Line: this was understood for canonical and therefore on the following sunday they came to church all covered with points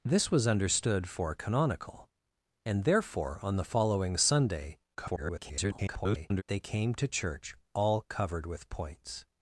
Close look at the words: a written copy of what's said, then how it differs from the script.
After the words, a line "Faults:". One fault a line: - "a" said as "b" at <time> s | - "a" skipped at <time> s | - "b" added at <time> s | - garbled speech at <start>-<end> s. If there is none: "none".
this was understood for canonical and therefore on the following sunday [garbled] they came to church all covered with points
Faults:
- garbled speech at 4.9-6.4 s